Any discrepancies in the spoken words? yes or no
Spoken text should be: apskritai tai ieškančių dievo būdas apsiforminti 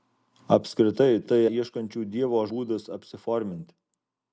no